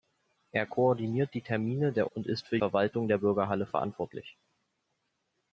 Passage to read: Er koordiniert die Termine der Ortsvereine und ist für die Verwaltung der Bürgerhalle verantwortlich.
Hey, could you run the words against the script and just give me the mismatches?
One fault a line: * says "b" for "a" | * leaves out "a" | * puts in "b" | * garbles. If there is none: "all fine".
* leaves out "Ortsvereine"
* leaves out "die"